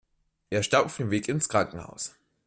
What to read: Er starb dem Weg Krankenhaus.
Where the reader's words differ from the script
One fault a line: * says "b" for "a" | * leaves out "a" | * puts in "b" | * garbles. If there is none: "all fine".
* puts in "auf"
* puts in "ins"